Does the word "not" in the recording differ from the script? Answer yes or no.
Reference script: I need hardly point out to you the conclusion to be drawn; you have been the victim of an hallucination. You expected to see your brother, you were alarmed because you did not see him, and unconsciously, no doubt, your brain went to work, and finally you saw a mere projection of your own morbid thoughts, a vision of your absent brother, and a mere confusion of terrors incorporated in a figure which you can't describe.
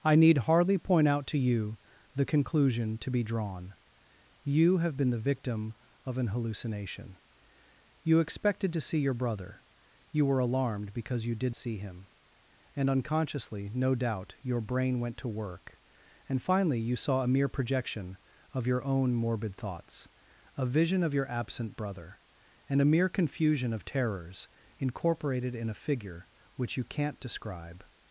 yes